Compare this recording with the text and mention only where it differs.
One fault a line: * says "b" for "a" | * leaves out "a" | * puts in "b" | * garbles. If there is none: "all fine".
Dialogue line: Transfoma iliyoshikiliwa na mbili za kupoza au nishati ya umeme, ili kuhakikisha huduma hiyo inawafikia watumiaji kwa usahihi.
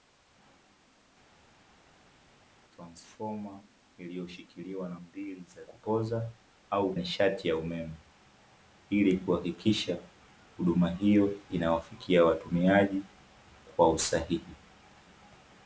all fine